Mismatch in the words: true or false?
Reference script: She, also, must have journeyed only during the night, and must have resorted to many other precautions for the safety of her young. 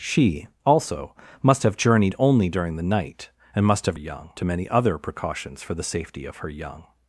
true